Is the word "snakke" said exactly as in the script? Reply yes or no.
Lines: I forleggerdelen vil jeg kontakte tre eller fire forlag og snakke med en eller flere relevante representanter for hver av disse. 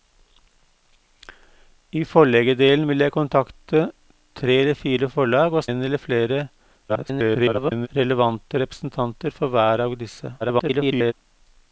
no